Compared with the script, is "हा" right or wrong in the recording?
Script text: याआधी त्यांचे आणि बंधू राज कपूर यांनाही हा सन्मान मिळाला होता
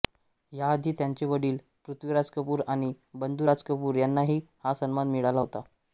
right